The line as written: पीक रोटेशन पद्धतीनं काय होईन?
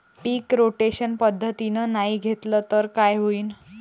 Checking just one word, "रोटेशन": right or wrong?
right